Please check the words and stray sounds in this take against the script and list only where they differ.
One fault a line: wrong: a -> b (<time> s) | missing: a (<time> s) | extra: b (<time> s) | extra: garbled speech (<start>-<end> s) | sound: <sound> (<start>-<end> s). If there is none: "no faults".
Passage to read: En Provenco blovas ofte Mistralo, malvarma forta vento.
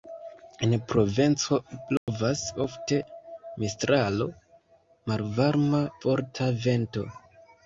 sound: dropout (2.0-2.1 s)